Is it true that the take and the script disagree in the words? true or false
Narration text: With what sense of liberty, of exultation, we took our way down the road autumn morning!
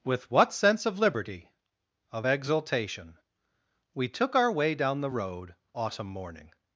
false